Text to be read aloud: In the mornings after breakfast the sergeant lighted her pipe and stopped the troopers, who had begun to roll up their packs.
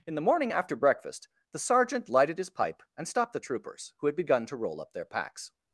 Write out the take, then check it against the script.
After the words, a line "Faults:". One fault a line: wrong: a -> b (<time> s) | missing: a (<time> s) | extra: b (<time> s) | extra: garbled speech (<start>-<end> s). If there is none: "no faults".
In the morning after breakfast the sergeant lighted his pipe and stopped the troopers, who had begun to roll up their packs.
Faults:
wrong: mornings -> morning (0.2 s)
wrong: her -> his (2.4 s)